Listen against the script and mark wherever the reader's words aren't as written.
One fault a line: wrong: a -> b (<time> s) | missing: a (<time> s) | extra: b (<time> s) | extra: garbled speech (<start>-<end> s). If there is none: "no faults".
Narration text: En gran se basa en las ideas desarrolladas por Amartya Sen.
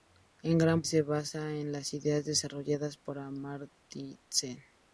no faults